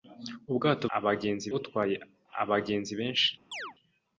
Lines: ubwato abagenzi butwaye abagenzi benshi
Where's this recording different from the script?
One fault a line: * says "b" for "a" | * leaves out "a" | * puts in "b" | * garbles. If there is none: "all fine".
all fine